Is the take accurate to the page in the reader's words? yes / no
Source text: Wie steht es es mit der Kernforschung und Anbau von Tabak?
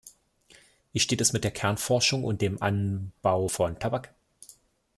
no